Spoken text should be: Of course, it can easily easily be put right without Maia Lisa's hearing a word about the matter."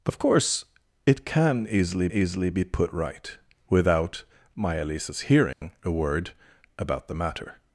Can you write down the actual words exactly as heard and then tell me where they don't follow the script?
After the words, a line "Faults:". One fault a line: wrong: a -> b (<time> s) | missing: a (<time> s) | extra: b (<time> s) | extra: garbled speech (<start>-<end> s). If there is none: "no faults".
Of course, it can easily easily be put right without Maia Lisa's hearing a word about the matter."
Faults:
no faults